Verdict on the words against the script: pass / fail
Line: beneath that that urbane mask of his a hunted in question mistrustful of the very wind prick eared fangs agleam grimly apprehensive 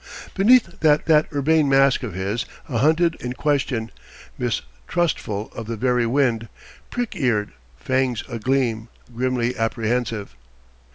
pass